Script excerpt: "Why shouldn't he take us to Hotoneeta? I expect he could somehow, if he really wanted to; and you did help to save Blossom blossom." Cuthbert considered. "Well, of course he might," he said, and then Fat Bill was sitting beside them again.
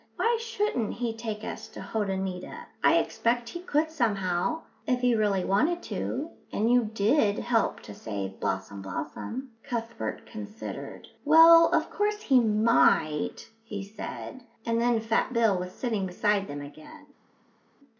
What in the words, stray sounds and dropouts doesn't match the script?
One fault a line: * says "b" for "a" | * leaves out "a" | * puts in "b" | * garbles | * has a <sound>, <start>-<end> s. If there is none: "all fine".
all fine